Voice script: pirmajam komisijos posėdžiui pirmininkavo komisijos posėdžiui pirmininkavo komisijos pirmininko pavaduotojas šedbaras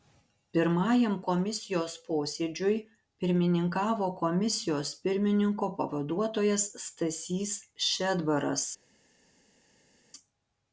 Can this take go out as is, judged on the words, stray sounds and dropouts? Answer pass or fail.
fail